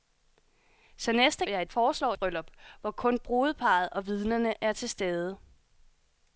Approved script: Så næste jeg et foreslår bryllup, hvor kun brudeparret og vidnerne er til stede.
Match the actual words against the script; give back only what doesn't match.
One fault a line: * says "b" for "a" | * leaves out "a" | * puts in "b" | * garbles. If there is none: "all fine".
all fine